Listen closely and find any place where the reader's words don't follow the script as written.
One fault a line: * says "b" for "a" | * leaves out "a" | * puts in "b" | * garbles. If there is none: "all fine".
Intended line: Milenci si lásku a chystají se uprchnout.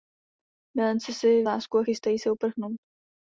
all fine